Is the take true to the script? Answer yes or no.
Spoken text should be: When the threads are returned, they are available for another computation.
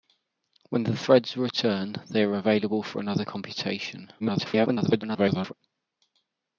no